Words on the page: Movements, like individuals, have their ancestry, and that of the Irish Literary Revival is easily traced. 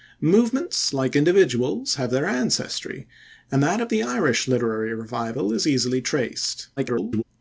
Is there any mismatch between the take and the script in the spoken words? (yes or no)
yes